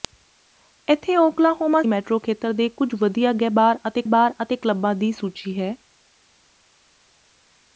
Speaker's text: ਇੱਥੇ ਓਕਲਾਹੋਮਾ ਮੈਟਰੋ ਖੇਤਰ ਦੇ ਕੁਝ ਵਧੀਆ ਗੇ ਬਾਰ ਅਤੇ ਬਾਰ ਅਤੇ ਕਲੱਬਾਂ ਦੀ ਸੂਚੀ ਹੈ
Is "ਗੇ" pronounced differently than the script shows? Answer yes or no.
no